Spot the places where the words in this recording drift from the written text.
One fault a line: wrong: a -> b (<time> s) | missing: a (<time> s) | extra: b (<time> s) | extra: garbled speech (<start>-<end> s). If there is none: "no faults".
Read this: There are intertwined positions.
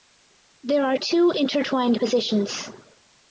extra: two (1.0 s)